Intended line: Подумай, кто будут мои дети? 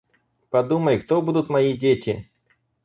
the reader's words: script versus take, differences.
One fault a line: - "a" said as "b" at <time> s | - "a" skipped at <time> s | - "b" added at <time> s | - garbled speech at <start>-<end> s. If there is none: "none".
none